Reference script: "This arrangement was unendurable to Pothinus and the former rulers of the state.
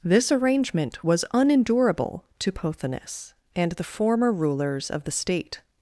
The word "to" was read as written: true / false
true